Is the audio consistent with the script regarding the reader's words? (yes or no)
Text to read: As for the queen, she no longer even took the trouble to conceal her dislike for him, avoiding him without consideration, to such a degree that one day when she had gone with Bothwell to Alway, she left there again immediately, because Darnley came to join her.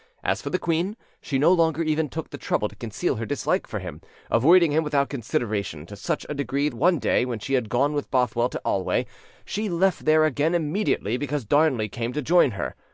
no